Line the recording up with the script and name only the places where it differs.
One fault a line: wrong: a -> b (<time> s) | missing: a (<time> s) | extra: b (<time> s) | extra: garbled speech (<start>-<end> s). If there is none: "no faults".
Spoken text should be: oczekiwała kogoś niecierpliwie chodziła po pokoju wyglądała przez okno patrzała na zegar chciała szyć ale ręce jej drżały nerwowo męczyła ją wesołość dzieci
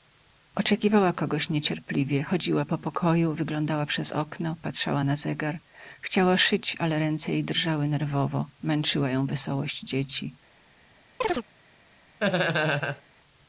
no faults